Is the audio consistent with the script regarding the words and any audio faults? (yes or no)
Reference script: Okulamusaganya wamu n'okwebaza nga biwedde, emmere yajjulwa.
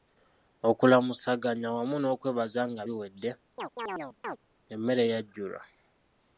no